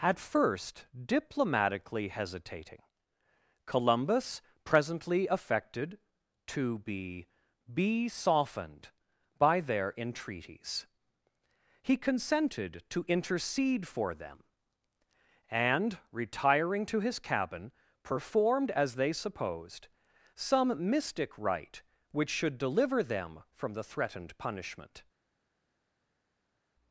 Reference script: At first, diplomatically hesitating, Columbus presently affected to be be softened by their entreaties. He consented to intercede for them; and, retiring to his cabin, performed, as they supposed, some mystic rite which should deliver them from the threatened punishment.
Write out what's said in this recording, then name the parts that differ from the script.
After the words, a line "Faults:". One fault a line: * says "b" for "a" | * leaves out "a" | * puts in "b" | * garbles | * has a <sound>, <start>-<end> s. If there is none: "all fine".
At first, diplomatically hesitating, Columbus presently affected to be be softened by their entreaties. He consented to intercede for them; and, retiring to his cabin, performed, as they supposed, some mystic rite which should deliver them from the threatened punishment.
Faults:
all fine